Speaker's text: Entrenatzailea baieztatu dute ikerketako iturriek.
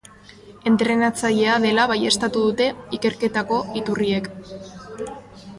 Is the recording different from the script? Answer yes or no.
yes